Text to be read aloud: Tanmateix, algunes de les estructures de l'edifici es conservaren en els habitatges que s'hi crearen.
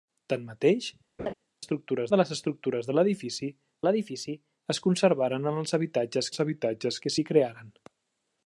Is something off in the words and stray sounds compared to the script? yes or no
yes